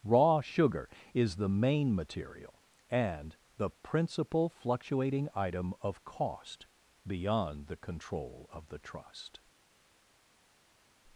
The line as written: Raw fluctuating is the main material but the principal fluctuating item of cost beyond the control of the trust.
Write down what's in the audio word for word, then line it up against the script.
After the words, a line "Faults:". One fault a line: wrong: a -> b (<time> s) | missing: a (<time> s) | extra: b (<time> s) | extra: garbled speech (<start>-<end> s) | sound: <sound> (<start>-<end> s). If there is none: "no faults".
Raw sugar is the main material and the principal fluctuating item of cost beyond the control of the trust.
Faults:
wrong: fluctuating -> sugar (0.4 s)
wrong: but -> and (2.9 s)